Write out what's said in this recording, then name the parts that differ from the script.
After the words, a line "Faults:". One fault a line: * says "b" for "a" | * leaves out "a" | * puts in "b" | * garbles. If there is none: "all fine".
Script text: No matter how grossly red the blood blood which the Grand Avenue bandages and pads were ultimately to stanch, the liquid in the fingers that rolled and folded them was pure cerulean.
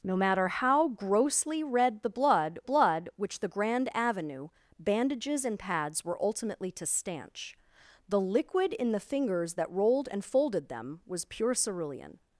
No matter how grossly red the blood blood which the Grand Avenue bandages and pads were ultimately to stanch, the liquid in the fingers that rolled and folded them was pure cerulean.
Faults:
all fine